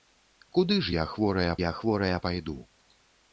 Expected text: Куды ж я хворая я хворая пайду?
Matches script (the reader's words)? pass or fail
pass